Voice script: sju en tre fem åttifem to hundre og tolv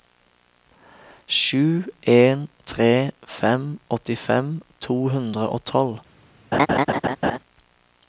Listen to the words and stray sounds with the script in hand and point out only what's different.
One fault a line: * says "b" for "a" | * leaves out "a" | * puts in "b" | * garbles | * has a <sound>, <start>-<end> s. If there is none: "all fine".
* has a laugh, 6.5-7.4 s